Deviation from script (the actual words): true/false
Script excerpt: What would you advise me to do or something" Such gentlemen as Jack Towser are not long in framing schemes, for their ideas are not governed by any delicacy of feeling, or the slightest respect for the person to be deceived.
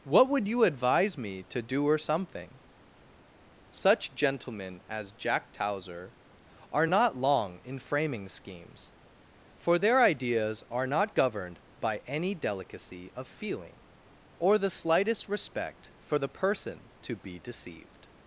false